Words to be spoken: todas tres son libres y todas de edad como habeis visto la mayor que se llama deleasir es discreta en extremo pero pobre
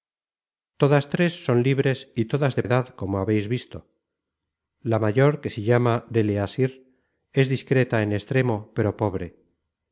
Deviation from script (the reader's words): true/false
false